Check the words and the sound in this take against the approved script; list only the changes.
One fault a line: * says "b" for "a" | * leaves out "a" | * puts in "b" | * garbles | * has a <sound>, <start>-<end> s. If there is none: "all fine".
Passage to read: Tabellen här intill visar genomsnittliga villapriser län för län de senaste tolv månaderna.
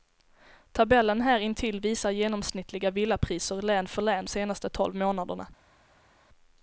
* leaves out "de"